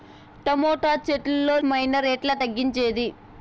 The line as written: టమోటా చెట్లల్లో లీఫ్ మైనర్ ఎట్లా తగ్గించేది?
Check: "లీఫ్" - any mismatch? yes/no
yes